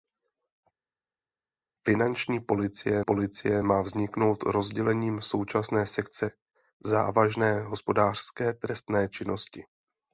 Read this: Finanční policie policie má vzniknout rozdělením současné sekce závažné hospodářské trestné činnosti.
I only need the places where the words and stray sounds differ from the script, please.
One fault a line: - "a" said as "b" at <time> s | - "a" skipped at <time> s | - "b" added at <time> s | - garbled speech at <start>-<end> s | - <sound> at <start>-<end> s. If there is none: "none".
none